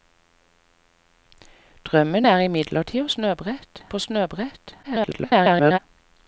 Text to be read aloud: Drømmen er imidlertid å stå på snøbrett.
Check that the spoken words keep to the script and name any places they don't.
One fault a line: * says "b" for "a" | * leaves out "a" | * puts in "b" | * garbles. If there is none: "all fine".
* says "snøbrett" for "stå"
* garbles